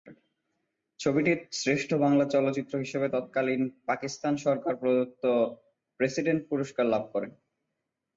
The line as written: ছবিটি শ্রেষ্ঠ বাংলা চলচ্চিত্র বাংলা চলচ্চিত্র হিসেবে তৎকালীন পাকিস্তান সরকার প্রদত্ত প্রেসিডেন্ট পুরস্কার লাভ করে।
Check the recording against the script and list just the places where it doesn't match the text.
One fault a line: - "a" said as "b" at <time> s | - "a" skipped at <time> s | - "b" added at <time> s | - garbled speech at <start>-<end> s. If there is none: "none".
- "বাংলা চলচ্চিত্র" skipped at 2.7 s